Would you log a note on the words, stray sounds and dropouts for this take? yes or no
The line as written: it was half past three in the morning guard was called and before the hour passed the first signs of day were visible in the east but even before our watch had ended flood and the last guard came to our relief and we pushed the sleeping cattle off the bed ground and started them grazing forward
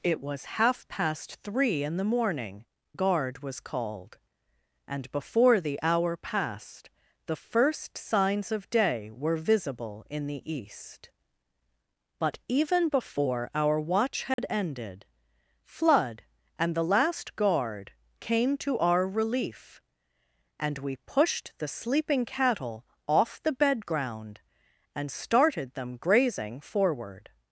yes